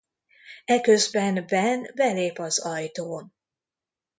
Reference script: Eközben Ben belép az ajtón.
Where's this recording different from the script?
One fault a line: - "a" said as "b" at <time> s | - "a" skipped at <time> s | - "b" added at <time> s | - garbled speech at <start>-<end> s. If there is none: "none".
none